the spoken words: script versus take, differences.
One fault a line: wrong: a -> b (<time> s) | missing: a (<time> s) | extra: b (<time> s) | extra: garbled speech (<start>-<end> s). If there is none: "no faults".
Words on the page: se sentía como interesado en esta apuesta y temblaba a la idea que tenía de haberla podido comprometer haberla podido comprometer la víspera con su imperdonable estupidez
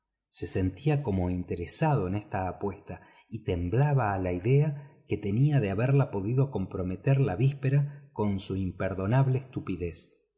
missing: haberla podido comprometer (7.2 s)